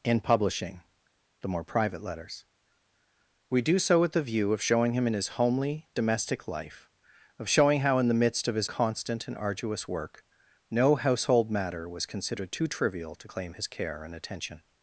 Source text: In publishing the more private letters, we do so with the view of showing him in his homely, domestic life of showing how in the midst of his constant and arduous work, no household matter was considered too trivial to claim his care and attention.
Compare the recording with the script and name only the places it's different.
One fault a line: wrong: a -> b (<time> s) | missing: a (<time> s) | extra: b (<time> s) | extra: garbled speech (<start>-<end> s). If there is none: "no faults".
no faults